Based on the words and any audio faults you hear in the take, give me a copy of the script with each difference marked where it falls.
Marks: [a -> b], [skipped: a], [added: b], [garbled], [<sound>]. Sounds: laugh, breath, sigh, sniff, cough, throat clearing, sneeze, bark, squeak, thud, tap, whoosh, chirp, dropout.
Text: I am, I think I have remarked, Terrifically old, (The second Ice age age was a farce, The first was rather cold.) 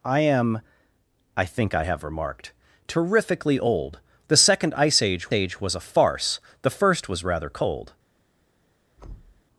I am, I think I have remarked, Terrifically old, (The second Ice age age was a farce, The first was rather cold.) [thud]